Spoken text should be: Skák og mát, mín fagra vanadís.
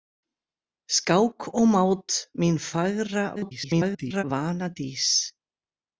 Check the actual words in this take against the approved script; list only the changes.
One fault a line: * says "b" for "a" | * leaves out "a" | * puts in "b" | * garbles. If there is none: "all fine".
* garbles